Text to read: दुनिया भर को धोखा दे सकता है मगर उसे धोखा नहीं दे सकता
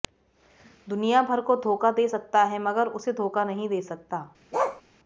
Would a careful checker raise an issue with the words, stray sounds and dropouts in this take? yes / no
yes